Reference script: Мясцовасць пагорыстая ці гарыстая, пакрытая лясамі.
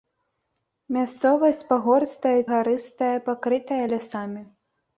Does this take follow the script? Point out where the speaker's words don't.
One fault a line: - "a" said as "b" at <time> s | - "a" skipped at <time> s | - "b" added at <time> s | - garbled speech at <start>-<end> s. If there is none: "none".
- "ці" skipped at 2.3 s